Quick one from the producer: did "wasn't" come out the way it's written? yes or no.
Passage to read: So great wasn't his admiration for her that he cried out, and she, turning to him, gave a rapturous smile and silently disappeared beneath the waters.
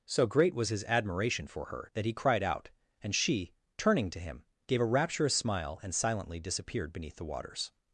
no